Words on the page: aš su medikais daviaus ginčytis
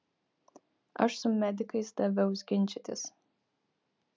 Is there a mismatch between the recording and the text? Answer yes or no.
no